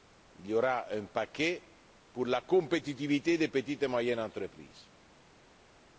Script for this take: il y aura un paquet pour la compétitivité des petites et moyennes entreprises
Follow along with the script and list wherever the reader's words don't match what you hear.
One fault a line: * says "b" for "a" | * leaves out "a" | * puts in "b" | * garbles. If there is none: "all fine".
all fine